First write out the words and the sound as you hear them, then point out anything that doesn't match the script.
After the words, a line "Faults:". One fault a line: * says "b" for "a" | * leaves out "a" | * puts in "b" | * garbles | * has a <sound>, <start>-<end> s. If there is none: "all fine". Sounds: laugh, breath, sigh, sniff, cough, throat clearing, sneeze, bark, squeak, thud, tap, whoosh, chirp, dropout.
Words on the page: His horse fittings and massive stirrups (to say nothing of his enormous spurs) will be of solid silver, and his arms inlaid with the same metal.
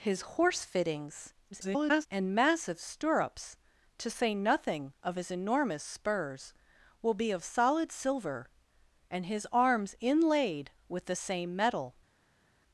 His horse fittings [garbled] and massive stirrups (to say nothing of his enormous spurs) will be of solid silver, and his arms inlaid with the same metal.
Faults:
* garbles